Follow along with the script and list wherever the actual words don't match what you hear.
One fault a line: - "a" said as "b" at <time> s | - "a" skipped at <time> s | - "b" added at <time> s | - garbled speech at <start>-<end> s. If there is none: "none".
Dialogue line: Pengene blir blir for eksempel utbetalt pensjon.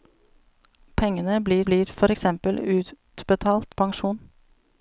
none